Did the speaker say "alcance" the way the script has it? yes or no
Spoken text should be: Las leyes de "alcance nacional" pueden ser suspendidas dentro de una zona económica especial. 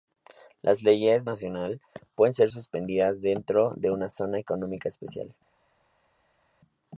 no